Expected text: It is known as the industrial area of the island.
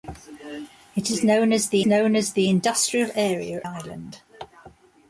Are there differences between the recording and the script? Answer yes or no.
yes